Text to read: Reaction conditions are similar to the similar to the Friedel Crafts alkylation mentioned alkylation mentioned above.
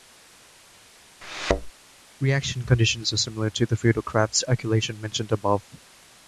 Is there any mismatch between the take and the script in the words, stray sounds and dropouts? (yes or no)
yes